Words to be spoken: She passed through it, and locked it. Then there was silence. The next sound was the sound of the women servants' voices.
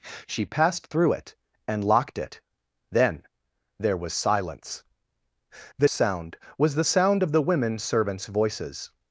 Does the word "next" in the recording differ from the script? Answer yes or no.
yes